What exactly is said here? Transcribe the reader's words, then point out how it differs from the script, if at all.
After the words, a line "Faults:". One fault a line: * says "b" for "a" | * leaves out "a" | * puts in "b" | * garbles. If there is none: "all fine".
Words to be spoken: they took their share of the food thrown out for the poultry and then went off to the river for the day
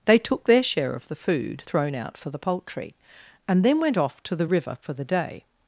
they took their share of the food thrown out for the poultry and then went off to the river for the day
Faults:
all fine